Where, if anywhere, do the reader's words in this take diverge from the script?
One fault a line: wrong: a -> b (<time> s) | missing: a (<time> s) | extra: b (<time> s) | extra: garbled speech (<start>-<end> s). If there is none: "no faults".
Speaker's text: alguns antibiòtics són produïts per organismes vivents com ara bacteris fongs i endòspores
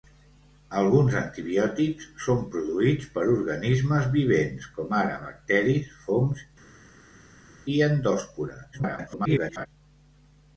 extra: garbled speech (8.7-9.7 s)